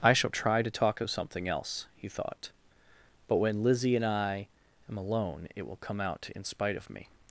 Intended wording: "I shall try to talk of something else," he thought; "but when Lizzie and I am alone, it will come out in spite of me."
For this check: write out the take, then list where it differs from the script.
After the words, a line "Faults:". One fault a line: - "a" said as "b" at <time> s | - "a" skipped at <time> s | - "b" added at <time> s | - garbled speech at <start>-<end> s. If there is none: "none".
"I shall try to talk of something else," he thought; "but when Lizzie and I am alone, it will come out in spite of me."
Faults:
none